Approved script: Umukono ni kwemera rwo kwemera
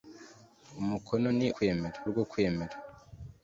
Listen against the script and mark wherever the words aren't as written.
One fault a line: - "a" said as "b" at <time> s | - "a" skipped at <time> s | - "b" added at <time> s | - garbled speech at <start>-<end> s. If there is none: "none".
none